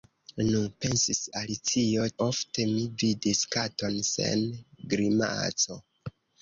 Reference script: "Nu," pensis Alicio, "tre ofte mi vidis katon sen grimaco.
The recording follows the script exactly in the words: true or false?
false